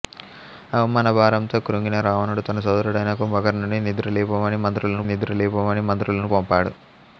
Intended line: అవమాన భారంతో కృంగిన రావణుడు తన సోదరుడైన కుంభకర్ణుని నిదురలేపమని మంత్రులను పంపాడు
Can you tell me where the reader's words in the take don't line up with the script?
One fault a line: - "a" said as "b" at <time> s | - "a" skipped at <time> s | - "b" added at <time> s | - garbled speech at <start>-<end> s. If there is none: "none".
- "నిదురలేపమని మంత్రులను" added at 5.1 s